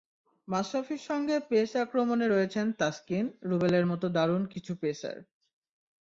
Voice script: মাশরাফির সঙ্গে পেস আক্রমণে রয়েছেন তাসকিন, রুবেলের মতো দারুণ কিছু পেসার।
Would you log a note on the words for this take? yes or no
no